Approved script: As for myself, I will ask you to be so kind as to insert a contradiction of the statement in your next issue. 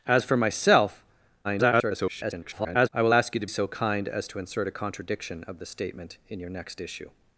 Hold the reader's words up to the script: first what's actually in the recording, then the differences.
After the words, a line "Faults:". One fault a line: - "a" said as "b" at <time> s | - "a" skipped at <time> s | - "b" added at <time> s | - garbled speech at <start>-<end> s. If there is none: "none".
As for myself, [garbled] I will ask you to so kind as to insert a contradiction of the statement in your next issue.
Faults:
- garbled speech at 1.4-2.9 s
- "be" skipped at 3.5 s